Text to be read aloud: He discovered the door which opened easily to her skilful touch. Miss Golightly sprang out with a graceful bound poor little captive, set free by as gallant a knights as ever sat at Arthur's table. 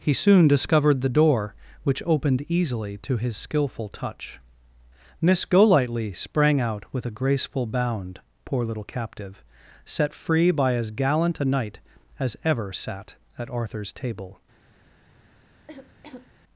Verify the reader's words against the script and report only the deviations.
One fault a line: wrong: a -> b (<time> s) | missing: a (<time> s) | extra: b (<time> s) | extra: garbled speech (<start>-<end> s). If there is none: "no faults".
extra: soon (0.1 s)
wrong: her -> his (3.2 s)
wrong: knights -> knight (11.4 s)